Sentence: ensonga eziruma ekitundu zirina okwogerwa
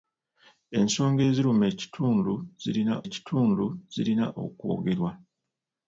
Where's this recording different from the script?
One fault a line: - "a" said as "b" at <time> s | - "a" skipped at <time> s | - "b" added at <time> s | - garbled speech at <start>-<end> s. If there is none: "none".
- "ekitundu zirina" added at 3.0 s